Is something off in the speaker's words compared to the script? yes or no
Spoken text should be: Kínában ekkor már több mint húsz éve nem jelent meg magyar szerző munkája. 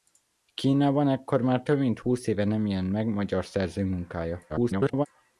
yes